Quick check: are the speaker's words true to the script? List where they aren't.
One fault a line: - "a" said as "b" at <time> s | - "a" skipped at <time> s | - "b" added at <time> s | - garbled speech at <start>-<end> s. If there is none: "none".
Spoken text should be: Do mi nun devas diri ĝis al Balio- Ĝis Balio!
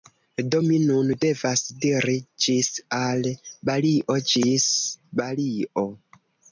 none